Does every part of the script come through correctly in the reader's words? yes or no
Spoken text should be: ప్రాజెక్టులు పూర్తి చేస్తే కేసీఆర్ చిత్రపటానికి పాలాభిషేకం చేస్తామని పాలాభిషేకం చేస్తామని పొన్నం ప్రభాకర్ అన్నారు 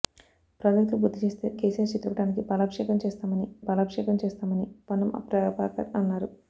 yes